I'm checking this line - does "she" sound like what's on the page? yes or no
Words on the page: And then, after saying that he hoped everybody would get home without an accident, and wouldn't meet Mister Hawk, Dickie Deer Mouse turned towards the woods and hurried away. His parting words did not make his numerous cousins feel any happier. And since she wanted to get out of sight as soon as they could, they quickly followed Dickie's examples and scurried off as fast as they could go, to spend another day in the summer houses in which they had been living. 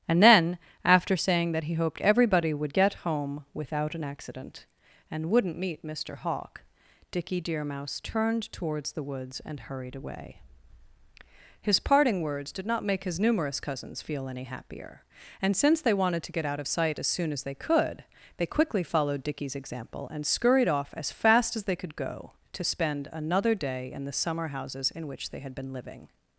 no